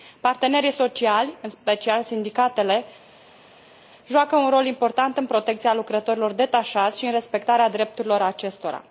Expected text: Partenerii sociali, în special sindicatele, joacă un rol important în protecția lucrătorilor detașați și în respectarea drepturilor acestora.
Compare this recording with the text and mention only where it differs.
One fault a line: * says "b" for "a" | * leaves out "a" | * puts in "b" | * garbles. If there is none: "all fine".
all fine